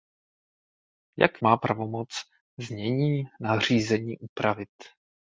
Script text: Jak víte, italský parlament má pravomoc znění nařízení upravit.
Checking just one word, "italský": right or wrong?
wrong